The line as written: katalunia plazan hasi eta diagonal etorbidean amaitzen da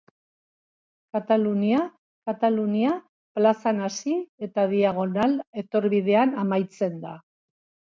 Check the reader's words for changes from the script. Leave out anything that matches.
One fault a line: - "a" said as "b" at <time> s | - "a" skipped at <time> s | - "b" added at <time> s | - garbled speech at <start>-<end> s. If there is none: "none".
- "katalunia" added at 2.3 s